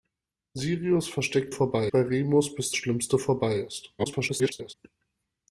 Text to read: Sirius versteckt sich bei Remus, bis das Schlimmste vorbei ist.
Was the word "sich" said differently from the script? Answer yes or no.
yes